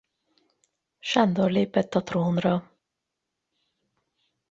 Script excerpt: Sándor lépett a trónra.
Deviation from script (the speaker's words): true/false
false